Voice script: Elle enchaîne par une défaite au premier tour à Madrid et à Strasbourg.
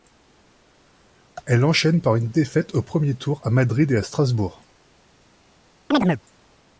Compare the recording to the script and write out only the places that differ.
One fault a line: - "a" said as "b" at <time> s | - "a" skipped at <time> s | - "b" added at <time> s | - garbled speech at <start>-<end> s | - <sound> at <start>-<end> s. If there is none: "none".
- chirp at 5.9-6.2 s